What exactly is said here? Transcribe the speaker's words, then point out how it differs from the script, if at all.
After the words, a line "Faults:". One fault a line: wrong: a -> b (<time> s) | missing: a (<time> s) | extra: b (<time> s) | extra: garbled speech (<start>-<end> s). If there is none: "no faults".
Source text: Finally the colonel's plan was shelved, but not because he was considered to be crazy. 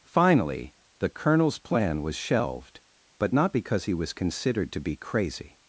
Finally the colonel's plan was shelved, but not because he was considered to be crazy.
Faults:
no faults